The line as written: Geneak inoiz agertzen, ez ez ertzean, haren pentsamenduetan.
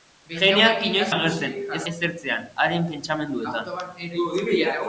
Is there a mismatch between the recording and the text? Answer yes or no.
no